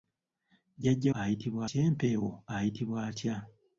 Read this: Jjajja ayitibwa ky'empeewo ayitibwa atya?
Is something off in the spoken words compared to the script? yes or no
no